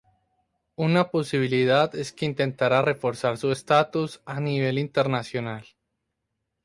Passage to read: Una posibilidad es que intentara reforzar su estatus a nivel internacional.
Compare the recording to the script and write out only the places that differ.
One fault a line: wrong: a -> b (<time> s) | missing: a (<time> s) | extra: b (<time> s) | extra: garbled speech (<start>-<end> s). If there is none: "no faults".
no faults